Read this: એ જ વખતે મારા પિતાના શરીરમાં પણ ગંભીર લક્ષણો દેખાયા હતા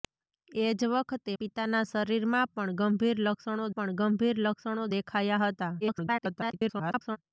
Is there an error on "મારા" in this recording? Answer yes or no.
yes